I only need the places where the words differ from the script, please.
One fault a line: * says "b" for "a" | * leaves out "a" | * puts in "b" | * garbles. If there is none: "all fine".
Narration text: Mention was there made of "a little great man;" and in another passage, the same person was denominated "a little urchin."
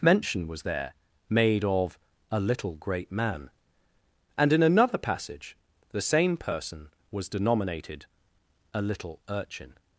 all fine